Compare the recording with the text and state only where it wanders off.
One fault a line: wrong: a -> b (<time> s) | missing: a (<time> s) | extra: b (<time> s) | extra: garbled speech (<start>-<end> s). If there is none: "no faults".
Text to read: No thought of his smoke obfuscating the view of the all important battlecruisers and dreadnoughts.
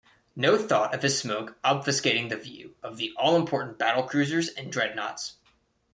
no faults